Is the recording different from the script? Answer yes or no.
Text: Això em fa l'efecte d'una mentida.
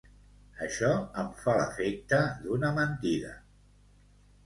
no